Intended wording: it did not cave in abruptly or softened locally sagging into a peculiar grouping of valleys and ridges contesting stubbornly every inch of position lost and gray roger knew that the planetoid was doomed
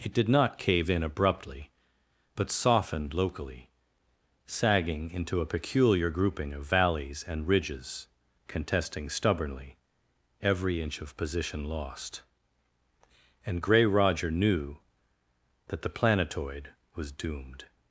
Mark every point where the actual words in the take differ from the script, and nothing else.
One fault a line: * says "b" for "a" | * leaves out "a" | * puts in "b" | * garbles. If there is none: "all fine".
* says "but" for "or"